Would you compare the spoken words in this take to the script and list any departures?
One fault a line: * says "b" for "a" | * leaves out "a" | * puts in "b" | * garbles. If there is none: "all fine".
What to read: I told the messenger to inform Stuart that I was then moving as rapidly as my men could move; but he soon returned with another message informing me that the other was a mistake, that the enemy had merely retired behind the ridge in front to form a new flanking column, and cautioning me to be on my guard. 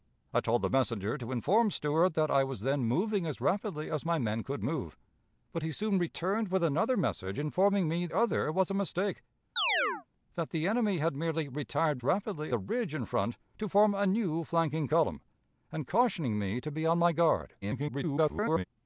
* leaves out "that the"
* says "rapidly" for "behind"
* garbles